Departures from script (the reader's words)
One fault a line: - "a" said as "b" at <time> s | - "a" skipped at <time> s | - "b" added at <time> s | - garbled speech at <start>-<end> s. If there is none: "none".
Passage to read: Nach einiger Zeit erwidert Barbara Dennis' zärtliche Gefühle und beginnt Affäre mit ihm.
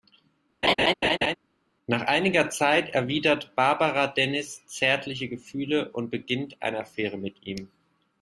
- "eine" added at 6.6 s